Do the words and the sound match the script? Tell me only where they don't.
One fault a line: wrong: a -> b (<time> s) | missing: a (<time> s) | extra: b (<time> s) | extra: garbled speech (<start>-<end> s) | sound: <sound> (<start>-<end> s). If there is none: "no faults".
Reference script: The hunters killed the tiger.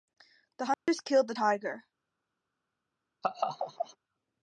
sound: dropout (0.7-0.9 s)
sound: laugh (3.2-4.0 s)